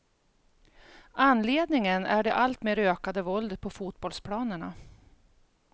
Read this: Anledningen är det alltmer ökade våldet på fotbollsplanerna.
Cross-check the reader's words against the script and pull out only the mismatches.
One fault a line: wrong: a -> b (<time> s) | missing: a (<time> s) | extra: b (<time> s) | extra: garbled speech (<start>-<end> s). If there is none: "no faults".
no faults